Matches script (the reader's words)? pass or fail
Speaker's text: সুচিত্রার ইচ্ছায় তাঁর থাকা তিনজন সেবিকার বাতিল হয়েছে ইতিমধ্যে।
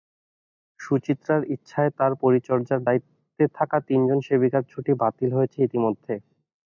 fail